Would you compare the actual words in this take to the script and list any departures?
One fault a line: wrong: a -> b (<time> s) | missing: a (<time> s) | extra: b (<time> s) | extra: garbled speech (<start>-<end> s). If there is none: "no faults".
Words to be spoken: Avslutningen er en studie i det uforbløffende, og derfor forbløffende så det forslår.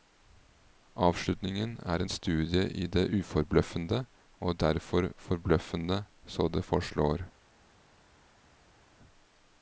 no faults